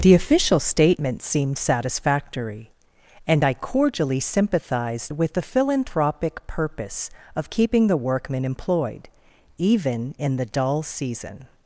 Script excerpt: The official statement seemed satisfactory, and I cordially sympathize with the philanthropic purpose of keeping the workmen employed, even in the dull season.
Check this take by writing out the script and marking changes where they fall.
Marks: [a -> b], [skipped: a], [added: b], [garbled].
The official statement seemed satisfactory, and I cordially [sympathize -> sympathized] with the philanthropic purpose of keeping the workmen employed, even in the dull season.